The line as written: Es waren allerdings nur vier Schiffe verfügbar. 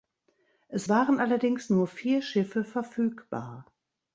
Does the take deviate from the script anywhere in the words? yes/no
no